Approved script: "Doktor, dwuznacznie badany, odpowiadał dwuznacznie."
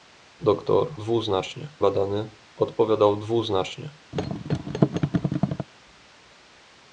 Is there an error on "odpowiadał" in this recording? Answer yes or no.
no